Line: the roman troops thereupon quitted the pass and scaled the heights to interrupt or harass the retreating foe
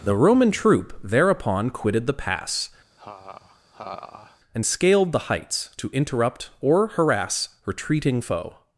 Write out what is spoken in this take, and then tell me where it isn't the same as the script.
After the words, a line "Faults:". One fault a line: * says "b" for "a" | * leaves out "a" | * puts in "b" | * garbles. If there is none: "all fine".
the roman troop thereupon quitted the pass and scaled the heights to interrupt or harass retreating foe
Faults:
* says "troop" for "troops"
* leaves out "the"